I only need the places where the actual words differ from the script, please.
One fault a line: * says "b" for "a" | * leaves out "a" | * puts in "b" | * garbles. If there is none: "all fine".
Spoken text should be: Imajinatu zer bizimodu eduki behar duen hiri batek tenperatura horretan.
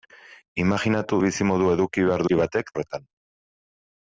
* leaves out "zer"
* leaves out "duen"
* leaves out "tenperatura"